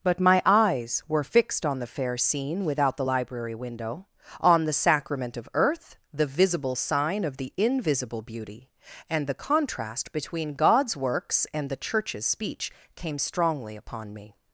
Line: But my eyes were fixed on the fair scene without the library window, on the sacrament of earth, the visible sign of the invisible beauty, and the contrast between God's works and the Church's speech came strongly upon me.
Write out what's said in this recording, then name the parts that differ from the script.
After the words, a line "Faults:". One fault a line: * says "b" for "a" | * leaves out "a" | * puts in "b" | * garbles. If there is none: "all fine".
But my eyes were fixed on the fair scene without the library window, on the sacrament of earth, the visible sign of the invisible beauty, and the contrast between God's works and the Church's speech came strongly upon me.
Faults:
all fine